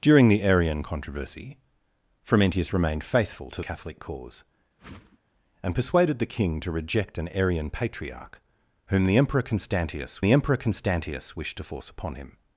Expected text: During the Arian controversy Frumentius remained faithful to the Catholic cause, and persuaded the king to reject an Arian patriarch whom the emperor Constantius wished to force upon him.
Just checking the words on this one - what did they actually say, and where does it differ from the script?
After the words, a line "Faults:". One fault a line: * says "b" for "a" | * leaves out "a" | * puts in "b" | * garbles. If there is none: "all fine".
During the Arian controversy Frumentius remained faithful to Catholic cause, and persuaded the king to reject an Arian patriarch whom the emperor Constantius the emperor Constantius wished to force upon him.
Faults:
* leaves out "the"
* puts in "the emperor Constantius"